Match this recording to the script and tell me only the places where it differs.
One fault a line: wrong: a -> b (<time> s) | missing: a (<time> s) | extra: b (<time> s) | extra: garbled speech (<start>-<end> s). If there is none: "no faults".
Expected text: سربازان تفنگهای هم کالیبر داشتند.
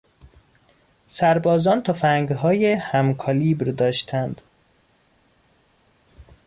no faults